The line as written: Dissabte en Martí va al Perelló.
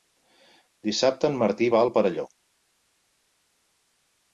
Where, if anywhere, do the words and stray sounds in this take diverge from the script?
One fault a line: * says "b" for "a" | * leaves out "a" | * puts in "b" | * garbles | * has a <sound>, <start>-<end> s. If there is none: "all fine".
all fine